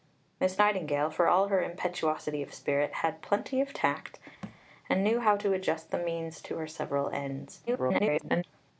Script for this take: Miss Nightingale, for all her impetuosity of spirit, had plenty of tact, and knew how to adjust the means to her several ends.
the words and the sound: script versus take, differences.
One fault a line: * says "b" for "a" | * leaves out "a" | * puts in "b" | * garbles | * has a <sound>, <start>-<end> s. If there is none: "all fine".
* has a thud, 4.4-4.6 s
* garbles